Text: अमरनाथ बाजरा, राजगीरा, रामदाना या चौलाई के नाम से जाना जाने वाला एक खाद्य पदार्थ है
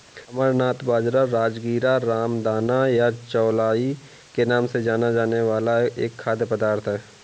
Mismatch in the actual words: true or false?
false